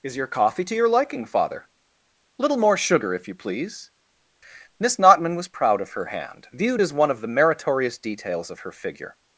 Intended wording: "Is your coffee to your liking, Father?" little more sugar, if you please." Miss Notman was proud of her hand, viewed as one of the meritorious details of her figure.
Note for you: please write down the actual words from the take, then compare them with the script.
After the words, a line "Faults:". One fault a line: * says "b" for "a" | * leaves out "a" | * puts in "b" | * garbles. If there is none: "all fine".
"Is your coffee to your liking, Father?" little more sugar, if you please." Miss Notman was proud of her hand, viewed as one of the meritorious details of her figure.
Faults:
all fine